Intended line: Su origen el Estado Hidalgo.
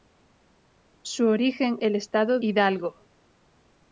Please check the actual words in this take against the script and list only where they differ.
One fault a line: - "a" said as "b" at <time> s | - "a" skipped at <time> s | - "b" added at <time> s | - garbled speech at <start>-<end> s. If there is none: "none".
none